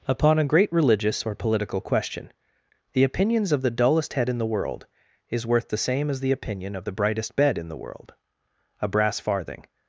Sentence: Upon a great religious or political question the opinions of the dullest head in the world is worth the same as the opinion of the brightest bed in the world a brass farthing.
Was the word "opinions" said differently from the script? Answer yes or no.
no